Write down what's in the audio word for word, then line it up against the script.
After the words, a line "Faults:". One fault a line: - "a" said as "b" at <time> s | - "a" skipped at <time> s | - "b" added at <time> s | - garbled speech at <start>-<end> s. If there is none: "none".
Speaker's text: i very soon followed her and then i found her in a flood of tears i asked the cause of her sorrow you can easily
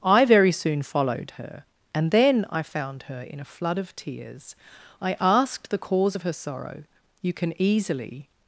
i very soon followed her and then i found her in a flood of tears i asked the cause of her sorrow you can easily
Faults:
none